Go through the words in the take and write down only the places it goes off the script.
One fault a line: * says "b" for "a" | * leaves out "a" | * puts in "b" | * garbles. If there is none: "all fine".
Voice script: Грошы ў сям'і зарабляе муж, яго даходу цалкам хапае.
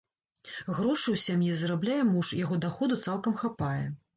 all fine